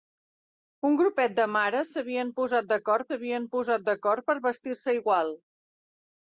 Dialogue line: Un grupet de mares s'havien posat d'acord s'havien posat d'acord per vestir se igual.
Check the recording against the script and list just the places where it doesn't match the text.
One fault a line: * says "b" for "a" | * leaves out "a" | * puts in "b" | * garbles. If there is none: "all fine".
all fine